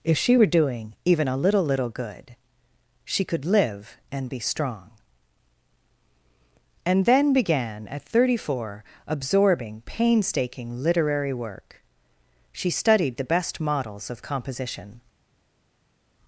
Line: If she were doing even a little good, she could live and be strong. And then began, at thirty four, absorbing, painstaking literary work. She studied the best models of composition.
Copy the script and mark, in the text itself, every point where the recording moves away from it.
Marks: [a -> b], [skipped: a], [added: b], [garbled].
If she were doing even a little [added: little] good, she could live and be strong. And then began, at thirty four, absorbing, painstaking literary work. She studied the best models of composition.